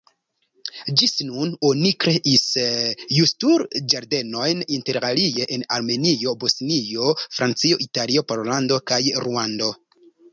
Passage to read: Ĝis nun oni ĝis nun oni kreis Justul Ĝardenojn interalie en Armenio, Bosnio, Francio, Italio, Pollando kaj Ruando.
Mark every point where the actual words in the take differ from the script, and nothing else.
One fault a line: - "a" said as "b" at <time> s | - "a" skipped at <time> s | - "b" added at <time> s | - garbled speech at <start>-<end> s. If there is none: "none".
- "ĝis nun oni" skipped at 1.9 s